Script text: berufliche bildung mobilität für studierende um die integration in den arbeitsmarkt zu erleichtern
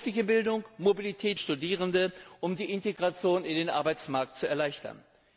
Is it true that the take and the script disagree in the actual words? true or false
true